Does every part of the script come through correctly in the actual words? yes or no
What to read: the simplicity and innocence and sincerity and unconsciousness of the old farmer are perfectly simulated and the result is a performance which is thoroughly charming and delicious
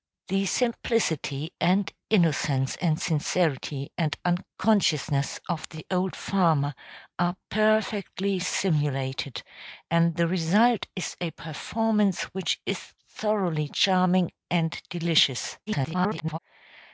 no